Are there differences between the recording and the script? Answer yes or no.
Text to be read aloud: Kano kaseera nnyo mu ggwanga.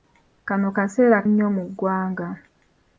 no